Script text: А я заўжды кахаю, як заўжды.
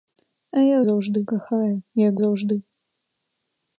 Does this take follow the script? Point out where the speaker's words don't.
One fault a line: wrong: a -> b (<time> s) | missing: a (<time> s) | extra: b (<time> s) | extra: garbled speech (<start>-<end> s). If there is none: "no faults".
no faults